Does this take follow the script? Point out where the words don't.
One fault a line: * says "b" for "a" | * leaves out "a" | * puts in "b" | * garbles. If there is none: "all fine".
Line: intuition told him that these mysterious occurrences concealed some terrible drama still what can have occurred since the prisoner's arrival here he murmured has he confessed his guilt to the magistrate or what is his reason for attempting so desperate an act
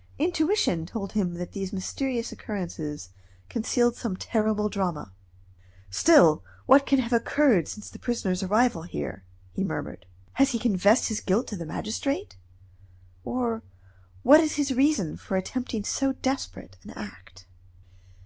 all fine